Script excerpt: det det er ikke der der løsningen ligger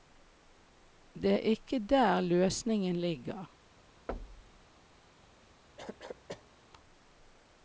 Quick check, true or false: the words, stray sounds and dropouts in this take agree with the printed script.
false